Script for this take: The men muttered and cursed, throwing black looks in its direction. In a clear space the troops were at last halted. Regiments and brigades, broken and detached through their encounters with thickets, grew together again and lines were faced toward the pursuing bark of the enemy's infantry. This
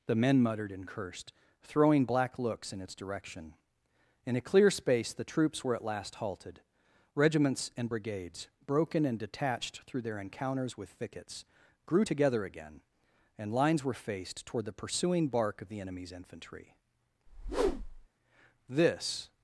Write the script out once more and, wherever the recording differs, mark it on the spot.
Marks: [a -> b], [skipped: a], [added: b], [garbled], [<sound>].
The men muttered and cursed, throwing black looks in its direction. In a clear space the troops were at last halted. Regiments and brigades, broken and detached through their encounters with thickets, grew together again and lines were faced toward the pursuing bark of the enemy's infantry. [whoosh] This